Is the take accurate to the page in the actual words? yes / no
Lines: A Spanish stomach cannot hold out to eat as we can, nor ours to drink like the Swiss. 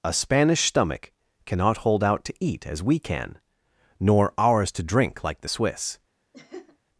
yes